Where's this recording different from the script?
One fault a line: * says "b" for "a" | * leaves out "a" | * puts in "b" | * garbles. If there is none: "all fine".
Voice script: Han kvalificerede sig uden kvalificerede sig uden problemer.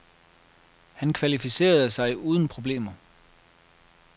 * leaves out "kvalificerede sig uden"